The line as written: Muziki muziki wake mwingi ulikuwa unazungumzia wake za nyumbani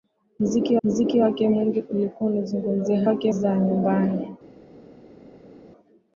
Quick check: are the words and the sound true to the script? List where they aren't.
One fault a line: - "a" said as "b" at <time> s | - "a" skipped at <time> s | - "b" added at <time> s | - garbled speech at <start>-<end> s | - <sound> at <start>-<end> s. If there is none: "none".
none